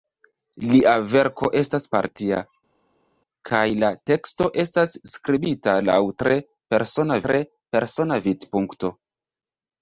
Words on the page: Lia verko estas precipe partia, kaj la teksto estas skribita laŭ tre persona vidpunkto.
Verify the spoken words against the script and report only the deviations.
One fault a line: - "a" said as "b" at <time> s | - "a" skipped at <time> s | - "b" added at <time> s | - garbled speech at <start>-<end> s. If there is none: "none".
- "precipe" skipped at 1.8 s
- "tre persona" added at 7.3 s